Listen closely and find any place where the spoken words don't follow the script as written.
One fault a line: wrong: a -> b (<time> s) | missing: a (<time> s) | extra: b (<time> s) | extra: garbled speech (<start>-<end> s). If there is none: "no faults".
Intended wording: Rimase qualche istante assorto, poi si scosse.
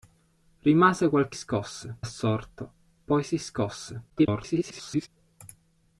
wrong: istante -> scosse (1.3 s)
extra: garbled speech (4.1-5.1 s)